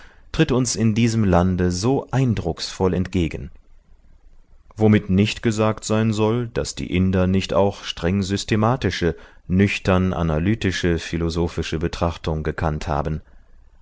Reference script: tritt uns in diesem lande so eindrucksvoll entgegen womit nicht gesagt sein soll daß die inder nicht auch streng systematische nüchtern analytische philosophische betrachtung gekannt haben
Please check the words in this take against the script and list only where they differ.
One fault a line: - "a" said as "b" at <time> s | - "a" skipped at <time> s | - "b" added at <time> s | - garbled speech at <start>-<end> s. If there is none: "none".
none